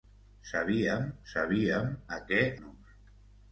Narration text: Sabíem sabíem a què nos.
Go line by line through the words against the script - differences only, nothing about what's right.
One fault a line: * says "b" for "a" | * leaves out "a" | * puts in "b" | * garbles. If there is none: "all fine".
all fine